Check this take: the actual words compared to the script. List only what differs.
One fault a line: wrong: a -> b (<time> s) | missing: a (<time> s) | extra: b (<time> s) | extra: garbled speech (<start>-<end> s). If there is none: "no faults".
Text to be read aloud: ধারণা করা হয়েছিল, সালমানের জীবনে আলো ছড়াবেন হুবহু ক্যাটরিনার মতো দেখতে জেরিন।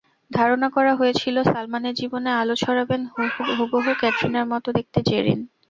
no faults